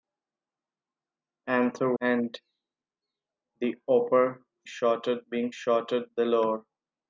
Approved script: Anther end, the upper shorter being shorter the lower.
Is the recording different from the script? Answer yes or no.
no